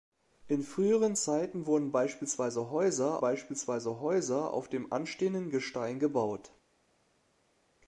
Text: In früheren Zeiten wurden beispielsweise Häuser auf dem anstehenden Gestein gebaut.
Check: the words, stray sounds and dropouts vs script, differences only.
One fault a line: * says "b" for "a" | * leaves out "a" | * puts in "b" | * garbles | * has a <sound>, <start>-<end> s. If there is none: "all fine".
* puts in "beispielsweise Häuser"